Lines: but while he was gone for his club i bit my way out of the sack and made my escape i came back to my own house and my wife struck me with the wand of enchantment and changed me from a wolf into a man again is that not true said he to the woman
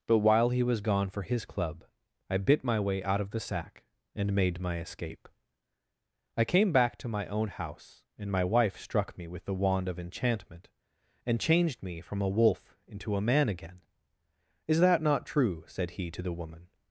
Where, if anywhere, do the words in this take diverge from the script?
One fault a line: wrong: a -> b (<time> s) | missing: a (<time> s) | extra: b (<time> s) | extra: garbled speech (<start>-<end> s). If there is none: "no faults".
no faults